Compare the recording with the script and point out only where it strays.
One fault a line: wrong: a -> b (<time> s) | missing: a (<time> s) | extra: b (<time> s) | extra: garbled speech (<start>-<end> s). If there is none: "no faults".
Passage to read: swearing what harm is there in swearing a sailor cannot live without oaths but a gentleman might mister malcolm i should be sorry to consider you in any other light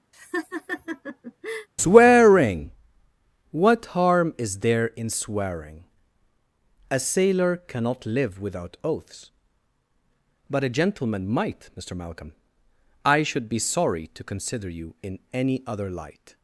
no faults